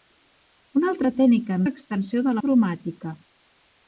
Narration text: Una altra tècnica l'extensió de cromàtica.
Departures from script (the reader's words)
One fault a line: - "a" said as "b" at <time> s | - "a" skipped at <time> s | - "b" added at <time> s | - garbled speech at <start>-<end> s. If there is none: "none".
none